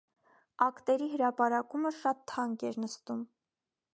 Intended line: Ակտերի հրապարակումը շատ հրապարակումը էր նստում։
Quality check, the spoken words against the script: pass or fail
fail